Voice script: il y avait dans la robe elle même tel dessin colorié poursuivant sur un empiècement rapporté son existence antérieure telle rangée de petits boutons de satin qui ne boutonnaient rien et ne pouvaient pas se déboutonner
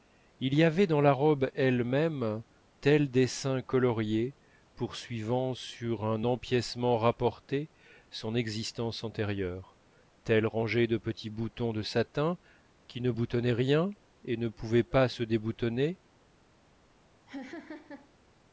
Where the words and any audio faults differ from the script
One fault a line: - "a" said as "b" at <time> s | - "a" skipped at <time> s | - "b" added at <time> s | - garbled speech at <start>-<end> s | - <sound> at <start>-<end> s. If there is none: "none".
- laugh at 17.3-18.1 s